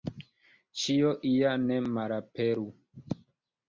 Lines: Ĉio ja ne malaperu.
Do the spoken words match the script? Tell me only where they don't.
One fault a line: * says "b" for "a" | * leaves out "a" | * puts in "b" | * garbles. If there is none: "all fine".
all fine